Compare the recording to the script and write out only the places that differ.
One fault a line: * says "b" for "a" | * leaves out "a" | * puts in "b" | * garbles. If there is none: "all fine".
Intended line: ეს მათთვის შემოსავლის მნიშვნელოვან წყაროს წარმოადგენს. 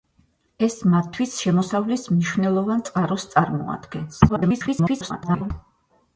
* garbles